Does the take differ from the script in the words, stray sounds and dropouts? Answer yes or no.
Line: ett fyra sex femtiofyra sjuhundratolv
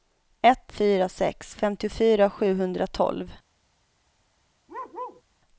yes